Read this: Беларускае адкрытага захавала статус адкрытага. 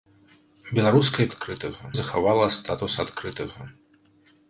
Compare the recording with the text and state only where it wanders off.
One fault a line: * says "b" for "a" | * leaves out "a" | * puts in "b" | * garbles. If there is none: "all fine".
all fine